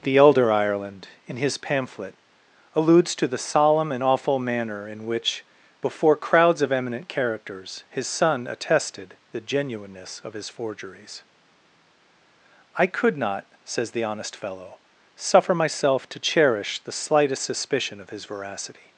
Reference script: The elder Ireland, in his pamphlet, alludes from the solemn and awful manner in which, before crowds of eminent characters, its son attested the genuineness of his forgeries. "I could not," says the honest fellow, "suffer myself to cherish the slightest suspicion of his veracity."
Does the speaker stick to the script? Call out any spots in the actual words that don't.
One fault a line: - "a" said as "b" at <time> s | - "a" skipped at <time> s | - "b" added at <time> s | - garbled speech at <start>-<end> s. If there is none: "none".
- "from" said as "to" at 3.1 s
- "its" said as "his" at 7.9 s